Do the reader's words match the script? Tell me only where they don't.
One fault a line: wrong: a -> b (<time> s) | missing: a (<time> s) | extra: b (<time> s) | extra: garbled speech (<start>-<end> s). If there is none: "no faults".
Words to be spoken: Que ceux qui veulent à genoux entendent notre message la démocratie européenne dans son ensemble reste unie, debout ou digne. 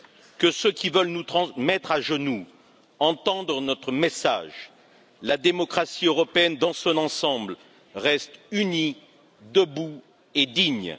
extra: nous mettre (1.1 s)
wrong: ou -> et (10.3 s)